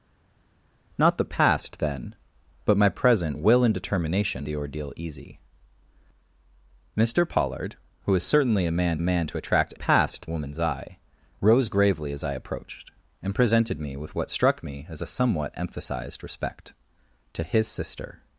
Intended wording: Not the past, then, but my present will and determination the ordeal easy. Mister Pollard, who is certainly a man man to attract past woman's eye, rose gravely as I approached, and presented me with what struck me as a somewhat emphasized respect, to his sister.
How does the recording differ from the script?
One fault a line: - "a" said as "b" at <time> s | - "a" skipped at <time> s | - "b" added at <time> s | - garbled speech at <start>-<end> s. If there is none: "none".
none